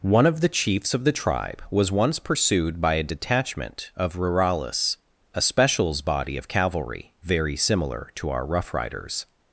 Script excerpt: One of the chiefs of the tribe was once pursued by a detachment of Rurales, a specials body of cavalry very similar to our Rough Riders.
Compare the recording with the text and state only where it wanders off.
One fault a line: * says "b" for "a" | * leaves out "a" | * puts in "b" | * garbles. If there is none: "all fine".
all fine